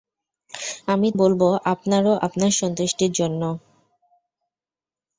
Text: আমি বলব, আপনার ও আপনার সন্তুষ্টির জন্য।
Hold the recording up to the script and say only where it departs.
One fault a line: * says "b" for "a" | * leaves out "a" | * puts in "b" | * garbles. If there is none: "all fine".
all fine